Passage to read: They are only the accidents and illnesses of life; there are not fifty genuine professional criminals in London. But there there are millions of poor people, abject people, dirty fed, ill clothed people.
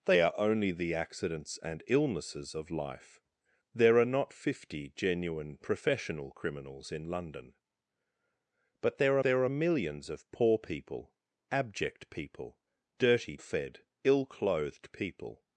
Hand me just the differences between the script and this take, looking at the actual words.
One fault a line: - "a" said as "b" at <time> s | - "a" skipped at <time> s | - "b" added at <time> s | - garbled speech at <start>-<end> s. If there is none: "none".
none